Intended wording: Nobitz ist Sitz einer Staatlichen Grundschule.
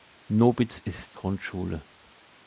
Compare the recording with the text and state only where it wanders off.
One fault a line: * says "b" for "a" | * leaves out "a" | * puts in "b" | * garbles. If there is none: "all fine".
* leaves out "Sitz einer Staatlichen"